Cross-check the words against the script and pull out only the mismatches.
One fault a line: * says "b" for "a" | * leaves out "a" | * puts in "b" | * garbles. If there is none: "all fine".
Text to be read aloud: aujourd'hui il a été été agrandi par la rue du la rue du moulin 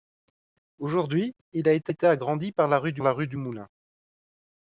all fine